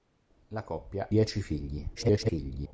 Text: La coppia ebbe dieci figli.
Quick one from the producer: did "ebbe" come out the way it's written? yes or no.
no